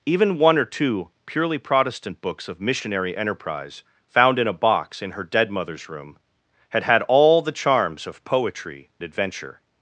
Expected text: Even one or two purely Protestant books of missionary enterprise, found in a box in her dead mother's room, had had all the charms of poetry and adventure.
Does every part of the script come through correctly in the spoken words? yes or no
no